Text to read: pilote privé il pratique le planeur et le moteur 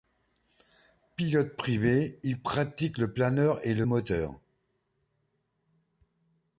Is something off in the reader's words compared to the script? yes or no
no